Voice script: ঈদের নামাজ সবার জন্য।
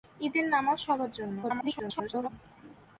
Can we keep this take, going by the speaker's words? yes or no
no